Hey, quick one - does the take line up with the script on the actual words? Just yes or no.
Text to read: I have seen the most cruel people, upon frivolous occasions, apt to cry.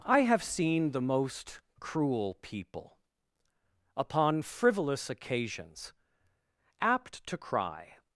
yes